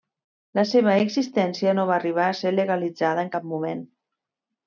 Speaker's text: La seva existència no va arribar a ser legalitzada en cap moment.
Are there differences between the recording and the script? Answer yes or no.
no